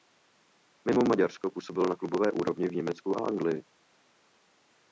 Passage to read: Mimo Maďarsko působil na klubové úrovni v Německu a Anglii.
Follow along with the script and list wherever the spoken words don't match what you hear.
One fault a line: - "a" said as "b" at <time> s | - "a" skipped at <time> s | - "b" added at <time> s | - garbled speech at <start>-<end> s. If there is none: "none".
none